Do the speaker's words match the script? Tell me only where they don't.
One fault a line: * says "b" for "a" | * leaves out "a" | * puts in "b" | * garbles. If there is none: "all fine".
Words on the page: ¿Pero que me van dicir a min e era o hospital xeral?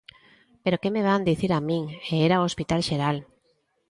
all fine